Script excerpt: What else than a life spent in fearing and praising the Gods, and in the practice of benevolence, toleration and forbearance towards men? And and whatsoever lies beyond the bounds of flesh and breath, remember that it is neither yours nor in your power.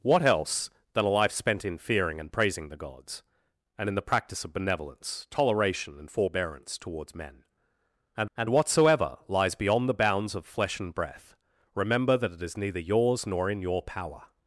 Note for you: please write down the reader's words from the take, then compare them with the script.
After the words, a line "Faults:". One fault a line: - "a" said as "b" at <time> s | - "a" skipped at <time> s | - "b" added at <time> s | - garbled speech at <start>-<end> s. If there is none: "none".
What else than a life spent in fearing and praising the Gods, and in the practice of benevolence, toleration and forbearance towards men? And and whatsoever lies beyond the bounds of flesh and breath, remember that it is neither yours nor in your power.
Faults:
none